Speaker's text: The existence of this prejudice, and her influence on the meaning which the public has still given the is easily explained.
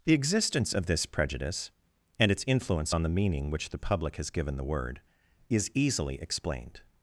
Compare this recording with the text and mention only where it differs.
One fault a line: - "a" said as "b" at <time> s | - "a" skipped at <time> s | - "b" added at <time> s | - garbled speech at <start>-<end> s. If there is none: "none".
- "her" said as "its" at 2.3 s
- "still" skipped at 4.3 s
- "word" added at 4.6 s